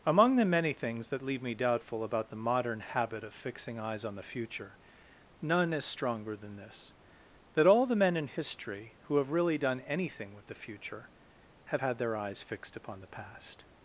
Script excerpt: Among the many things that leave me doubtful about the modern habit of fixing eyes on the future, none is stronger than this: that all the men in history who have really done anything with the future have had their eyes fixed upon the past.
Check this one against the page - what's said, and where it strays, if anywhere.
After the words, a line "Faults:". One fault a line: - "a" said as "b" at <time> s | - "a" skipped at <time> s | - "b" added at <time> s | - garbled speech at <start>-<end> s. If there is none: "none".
Among the many things that leave me doubtful about the modern habit of fixing eyes on the future, none is stronger than this: that all the men in history who have really done anything with the future have had their eyes fixed upon the past.
Faults:
none